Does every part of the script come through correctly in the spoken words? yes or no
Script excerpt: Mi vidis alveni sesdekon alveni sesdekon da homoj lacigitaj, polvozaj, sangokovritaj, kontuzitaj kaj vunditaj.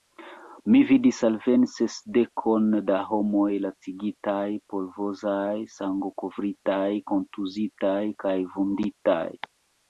no